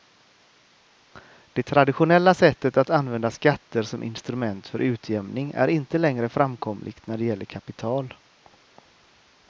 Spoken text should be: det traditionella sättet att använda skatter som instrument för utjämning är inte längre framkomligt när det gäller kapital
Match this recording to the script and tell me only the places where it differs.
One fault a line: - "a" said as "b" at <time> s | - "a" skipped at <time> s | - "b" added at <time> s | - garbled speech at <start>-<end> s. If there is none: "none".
none